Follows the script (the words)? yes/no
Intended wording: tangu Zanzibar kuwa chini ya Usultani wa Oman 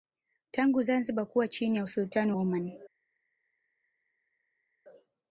no